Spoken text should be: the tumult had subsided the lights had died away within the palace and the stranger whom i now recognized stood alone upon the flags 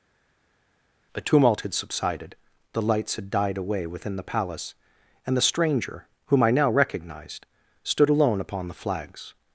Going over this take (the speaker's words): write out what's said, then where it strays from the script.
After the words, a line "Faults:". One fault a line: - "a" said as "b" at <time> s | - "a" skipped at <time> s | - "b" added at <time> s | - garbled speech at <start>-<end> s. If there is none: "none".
a tumult had subsided the lights had died away within the palace and the stranger whom i now recognized stood alone upon the flags
Faults:
- "the" said as "a" at 1.1 s